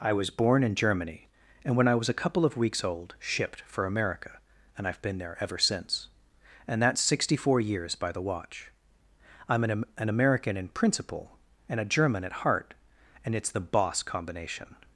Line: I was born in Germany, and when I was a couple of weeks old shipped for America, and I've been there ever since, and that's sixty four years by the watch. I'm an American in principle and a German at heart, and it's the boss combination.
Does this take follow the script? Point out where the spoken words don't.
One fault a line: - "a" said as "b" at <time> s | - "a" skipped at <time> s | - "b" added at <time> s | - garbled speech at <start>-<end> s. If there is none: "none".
- "an" added at 10.0 s